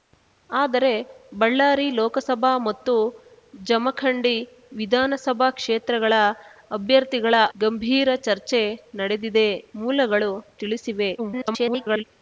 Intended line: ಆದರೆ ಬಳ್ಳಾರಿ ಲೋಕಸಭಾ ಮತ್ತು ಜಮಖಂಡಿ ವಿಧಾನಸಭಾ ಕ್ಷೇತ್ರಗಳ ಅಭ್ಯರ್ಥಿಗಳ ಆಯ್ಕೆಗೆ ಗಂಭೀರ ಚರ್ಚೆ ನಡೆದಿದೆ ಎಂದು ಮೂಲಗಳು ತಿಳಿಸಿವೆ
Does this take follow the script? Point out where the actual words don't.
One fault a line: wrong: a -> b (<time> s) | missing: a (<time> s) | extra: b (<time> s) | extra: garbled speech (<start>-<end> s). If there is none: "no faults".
missing: ಆಯ್ಕೆಗೆ (7.4 s)
missing: ಎಂದು (9.5 s)
extra: garbled speech (11.2-12.0 s)